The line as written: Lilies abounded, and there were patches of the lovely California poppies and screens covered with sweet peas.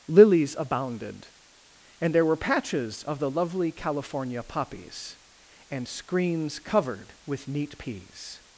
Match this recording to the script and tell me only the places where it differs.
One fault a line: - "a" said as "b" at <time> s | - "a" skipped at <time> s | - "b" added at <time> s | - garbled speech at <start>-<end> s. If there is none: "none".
- "sweet" said as "neat" at 7.5 s